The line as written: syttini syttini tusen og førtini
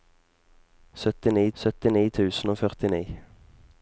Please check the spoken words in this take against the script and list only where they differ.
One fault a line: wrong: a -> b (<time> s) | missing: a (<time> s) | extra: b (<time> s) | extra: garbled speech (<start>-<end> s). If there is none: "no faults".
no faults